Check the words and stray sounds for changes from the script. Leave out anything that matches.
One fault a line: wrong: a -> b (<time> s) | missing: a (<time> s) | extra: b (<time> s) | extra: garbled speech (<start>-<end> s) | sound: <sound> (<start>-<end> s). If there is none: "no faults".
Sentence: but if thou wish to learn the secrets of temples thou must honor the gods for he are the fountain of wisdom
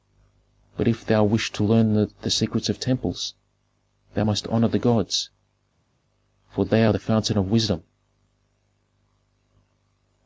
wrong: he -> they (6.6 s)